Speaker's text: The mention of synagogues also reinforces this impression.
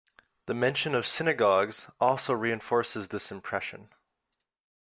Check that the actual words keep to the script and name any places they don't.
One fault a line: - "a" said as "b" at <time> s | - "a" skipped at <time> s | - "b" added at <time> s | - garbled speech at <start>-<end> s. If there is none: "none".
none